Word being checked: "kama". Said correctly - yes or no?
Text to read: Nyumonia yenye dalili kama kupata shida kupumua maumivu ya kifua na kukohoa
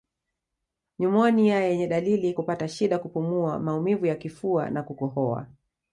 no